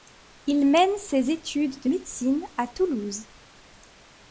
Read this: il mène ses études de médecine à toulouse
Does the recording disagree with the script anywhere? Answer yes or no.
no